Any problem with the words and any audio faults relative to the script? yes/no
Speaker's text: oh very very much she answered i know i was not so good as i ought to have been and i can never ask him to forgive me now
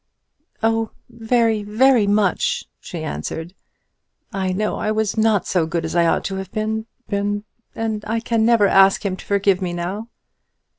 yes